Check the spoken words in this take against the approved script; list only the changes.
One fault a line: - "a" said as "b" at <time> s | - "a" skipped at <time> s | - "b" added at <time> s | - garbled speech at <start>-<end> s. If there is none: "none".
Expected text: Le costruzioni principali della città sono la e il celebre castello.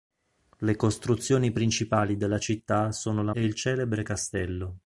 none